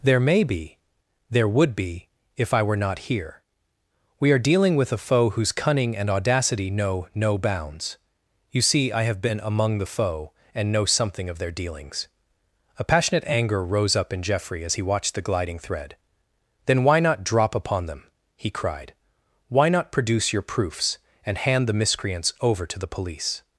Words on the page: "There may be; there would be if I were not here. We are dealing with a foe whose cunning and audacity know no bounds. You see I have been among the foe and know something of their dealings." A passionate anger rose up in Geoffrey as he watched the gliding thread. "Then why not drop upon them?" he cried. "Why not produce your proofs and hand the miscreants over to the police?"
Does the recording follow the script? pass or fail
pass